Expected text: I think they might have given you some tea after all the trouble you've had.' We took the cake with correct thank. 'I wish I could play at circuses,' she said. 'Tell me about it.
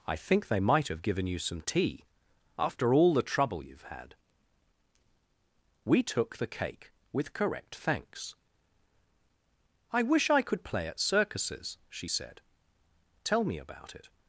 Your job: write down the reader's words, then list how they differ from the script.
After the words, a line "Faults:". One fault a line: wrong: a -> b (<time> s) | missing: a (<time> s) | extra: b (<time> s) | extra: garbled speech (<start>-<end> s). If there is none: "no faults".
I think they might have given you some tea after all the trouble you've had.' We took the cake with correct thanks. 'I wish I could play at circuses,' she said. 'Tell me about it.
Faults:
wrong: thank -> thanks (7.8 s)